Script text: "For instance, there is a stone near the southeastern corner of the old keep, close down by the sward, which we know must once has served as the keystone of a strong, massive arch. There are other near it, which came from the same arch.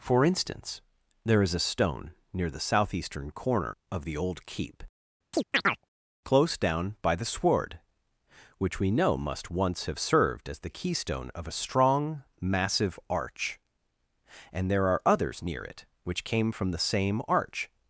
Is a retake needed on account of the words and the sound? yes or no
yes